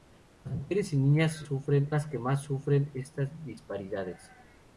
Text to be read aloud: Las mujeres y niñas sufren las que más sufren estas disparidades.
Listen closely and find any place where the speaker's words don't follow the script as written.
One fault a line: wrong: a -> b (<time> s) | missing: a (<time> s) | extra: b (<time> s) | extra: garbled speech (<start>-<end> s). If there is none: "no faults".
no faults